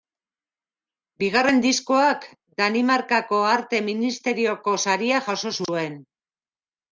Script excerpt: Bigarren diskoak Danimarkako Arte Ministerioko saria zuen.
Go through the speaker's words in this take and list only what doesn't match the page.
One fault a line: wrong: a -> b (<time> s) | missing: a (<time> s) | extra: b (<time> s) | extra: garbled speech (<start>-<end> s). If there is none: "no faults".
extra: jaso (5.3 s)